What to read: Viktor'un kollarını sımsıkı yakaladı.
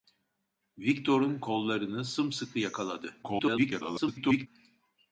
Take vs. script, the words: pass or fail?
fail